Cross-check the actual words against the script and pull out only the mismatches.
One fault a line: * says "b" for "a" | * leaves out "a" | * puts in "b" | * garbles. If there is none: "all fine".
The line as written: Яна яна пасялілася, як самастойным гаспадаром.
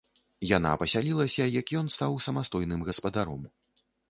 * leaves out "яна"
* puts in "ён стаў"